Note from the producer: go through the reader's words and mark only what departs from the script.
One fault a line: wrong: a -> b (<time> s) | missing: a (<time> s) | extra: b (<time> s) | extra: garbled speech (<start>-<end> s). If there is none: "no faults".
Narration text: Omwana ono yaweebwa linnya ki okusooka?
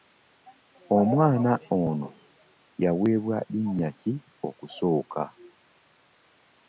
no faults